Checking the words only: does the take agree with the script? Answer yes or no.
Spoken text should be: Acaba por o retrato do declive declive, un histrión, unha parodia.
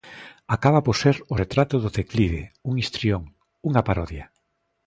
no